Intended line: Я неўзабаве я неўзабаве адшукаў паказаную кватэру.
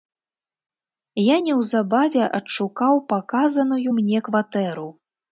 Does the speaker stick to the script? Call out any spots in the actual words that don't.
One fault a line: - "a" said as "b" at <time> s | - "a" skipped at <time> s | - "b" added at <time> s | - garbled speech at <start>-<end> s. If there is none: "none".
- "я неўзабаве" skipped at 2.2 s
- "мне" added at 3.9 s